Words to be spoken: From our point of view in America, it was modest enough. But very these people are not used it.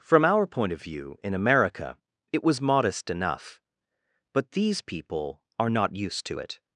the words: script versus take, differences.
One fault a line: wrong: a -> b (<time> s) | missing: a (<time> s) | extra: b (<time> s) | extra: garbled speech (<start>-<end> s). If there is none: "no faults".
missing: very (4.5 s)
extra: to (6.3 s)